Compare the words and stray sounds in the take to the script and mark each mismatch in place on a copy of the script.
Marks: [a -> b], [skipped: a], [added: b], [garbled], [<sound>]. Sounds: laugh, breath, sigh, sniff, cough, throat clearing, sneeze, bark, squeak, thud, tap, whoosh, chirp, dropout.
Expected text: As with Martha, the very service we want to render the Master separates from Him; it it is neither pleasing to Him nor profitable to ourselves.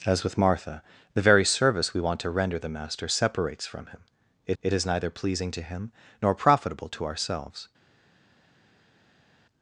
As with Martha, the very service we want to render the Master separates from Him; it it is neither pleasing to Him nor profitable to ourselves.